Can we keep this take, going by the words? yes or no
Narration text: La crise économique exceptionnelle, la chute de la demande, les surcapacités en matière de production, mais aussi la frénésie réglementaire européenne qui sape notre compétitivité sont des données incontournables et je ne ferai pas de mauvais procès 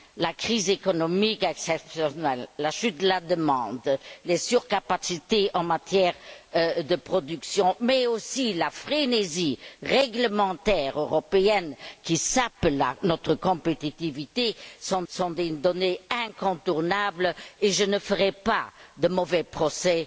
no